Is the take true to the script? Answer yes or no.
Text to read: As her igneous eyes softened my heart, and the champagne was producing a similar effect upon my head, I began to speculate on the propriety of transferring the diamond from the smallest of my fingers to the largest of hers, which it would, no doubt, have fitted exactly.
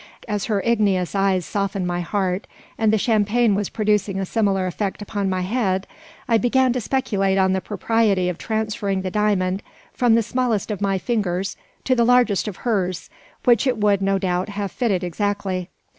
yes